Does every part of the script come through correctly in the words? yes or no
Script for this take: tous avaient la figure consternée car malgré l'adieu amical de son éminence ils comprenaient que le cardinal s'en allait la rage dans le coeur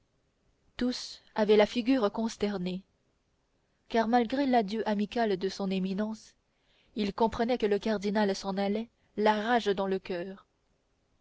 yes